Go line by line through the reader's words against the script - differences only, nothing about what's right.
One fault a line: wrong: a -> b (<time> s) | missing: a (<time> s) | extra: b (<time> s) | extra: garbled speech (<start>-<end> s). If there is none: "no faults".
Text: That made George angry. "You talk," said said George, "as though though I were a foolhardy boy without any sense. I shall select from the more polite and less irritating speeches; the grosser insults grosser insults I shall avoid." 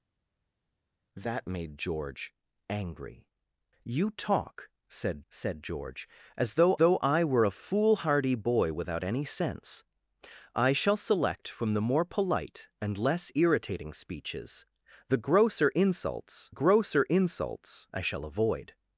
no faults